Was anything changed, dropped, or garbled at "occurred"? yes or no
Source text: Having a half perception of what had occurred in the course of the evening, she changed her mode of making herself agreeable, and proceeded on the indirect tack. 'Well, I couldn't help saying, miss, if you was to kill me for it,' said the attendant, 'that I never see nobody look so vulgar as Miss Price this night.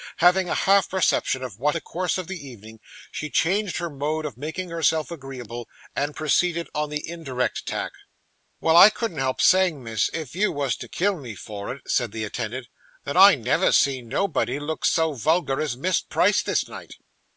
yes